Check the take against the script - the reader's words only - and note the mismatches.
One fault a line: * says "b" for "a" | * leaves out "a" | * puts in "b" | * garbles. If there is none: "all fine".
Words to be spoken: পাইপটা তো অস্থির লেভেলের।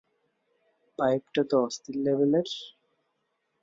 all fine